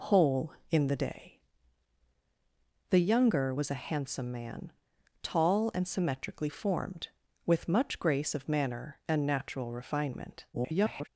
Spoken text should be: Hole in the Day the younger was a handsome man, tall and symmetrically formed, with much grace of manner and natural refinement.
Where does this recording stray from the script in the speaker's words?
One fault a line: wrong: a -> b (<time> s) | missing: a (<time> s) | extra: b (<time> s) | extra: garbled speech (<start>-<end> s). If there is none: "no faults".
extra: garbled speech (10.5-11.1 s)